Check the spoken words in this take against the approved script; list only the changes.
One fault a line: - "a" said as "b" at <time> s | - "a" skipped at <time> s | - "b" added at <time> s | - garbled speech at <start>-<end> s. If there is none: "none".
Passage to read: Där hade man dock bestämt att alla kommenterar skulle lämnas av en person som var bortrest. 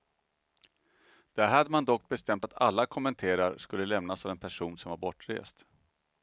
none